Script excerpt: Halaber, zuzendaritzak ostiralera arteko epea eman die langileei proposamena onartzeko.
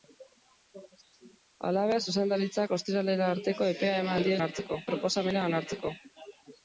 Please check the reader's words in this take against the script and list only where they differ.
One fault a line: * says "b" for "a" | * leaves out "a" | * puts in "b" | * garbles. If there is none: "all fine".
* says "onartzeko" for "langileei"